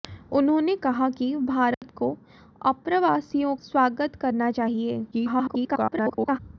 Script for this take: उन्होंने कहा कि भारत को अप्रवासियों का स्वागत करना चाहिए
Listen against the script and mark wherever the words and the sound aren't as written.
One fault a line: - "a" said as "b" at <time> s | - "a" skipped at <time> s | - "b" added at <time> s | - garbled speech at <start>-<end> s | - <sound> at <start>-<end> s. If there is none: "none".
- dropout at 1.7-1.8 s
- "का" skipped at 3.5 s
- garbled speech at 5.1-6.4 s